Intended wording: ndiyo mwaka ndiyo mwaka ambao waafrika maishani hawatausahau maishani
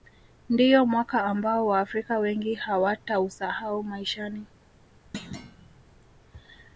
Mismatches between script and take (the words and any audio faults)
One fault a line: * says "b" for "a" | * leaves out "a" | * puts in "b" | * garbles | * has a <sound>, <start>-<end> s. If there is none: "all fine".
* leaves out "ndiyo mwaka"
* says "wengi" for "maishani"
* has a thud, 5.1-5.8 s